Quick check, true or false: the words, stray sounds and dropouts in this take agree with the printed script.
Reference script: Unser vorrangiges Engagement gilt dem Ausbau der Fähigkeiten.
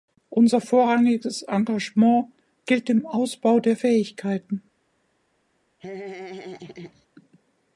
false